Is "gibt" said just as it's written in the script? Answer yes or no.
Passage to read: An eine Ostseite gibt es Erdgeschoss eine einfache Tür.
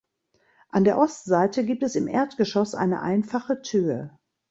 yes